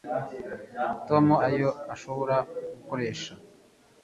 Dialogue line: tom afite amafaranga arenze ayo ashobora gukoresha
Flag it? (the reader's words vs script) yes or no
yes